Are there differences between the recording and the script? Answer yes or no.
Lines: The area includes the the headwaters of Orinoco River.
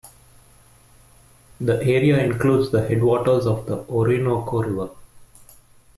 yes